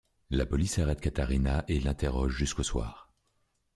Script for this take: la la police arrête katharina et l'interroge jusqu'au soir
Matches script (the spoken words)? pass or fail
fail